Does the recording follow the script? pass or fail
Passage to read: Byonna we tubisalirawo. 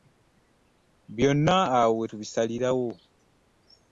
fail